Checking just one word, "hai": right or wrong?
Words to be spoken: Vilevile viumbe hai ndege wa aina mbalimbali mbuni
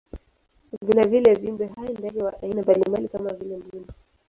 right